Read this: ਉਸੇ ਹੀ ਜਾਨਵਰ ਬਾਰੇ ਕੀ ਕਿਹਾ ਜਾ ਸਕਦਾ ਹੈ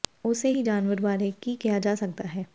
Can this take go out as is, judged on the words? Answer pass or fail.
pass